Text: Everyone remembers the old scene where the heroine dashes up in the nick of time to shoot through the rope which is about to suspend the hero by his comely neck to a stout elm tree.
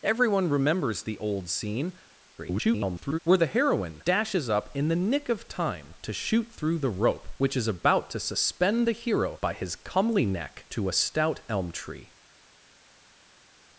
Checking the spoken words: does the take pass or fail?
fail